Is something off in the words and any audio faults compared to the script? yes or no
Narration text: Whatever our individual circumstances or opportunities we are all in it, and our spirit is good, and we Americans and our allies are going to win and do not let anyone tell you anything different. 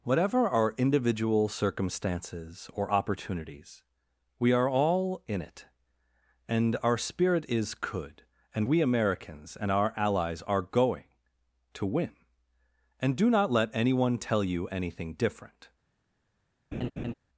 yes